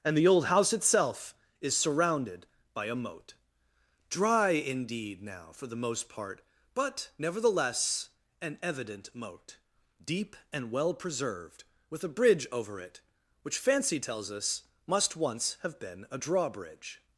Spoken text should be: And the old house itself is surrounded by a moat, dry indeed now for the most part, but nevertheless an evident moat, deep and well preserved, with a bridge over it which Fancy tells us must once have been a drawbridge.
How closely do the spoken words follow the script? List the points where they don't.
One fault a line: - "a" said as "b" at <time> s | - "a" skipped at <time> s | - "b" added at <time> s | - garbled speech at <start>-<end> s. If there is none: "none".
none